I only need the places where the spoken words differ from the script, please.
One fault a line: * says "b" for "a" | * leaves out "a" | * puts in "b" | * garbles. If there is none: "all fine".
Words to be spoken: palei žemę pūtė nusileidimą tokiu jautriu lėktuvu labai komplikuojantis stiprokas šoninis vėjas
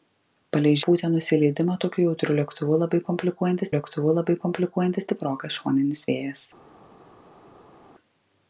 * leaves out "žemę"
* puts in "lėktuvu labai komplikuojantis"